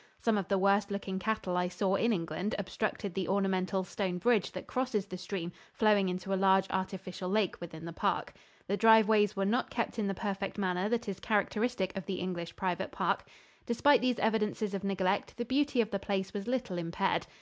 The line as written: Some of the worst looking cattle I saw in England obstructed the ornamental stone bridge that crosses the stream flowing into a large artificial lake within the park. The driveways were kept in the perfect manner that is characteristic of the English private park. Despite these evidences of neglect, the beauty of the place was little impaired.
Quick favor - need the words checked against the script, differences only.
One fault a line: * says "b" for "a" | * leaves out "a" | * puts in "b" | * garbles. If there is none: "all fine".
* puts in "not"